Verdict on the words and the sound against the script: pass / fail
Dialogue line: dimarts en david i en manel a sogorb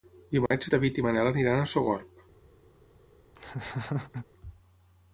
fail